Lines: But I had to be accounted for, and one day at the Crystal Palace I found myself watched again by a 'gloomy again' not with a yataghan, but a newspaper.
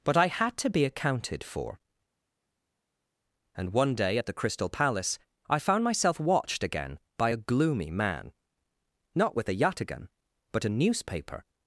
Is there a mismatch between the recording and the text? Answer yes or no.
yes